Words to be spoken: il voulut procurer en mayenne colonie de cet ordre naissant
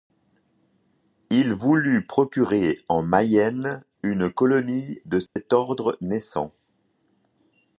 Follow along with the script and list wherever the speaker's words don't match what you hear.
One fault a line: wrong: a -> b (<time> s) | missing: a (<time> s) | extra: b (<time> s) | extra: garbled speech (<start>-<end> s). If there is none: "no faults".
extra: une (4.0 s)